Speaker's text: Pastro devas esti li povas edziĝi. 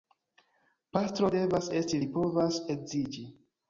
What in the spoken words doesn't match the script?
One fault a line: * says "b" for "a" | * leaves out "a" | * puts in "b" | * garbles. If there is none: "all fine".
all fine